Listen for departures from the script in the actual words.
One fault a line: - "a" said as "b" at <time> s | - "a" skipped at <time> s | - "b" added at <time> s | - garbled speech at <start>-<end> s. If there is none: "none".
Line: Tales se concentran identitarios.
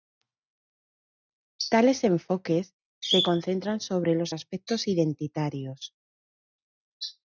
- "enfoques" added at 2.0 s
- "sobre los aspectos" added at 3.8 s